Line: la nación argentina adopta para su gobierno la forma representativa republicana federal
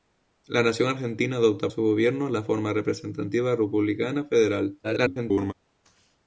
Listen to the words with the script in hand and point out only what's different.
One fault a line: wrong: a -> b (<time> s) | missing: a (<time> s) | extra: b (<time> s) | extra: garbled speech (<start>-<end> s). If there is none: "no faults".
missing: para (1.7 s)
extra: garbled speech (4.8-5.5 s)